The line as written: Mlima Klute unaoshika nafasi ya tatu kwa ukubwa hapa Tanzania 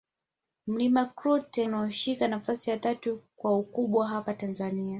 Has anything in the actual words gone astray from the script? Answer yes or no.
no